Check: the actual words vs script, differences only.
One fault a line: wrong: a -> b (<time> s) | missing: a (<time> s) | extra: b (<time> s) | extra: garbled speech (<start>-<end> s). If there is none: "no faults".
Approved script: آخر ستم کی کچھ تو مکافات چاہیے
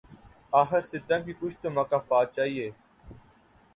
no faults